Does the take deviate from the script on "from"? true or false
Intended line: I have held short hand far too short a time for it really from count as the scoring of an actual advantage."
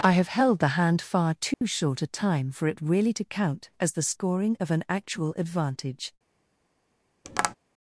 true